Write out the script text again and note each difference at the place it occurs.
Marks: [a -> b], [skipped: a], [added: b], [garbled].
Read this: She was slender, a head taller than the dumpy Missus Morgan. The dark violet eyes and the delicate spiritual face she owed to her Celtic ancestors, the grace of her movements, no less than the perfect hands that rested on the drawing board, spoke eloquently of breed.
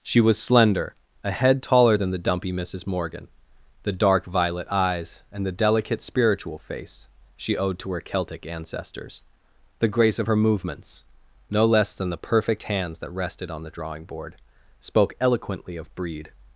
She was slender, a head taller than the dumpy Missus Morgan. The dark violet eyes and the delicate spiritual face she owed to her Celtic ancestors, the grace of her movements, no less than the perfect hands that rested on the drawing board, spoke eloquently of breed.